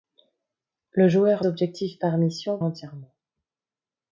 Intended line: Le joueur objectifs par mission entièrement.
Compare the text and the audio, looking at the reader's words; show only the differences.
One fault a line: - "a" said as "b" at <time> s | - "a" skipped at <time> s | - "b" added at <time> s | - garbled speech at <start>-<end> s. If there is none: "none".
none